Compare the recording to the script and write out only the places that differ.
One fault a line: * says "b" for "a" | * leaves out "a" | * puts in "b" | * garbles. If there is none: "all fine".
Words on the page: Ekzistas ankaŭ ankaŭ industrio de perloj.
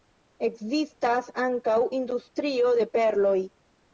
* leaves out "ankaŭ"